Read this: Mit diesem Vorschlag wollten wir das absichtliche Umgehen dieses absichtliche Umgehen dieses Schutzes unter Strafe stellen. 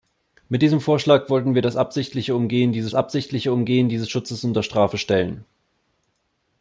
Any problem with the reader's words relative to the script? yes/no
no